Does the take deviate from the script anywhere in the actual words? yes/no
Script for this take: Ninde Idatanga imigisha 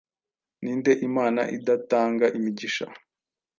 yes